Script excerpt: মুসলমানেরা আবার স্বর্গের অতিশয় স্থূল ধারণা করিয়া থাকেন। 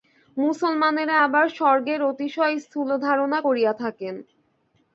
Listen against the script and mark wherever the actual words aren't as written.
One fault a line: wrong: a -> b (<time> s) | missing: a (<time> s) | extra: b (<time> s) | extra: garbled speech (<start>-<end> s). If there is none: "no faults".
no faults